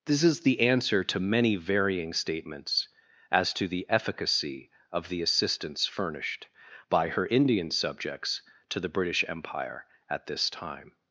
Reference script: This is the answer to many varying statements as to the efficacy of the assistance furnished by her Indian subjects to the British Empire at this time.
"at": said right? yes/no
yes